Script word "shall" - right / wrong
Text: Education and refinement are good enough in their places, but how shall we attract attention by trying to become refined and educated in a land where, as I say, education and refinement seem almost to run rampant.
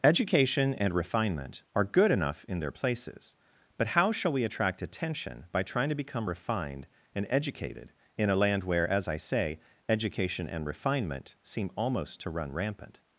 right